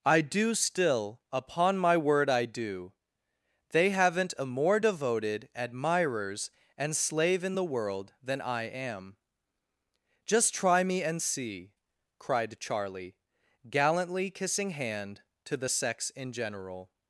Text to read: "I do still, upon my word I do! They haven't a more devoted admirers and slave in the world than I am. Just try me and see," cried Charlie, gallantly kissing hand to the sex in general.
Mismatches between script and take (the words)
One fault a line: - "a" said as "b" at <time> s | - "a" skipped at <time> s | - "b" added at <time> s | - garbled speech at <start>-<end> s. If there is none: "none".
none